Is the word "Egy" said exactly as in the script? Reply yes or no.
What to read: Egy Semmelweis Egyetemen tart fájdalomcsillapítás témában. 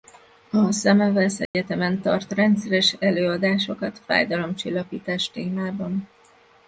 no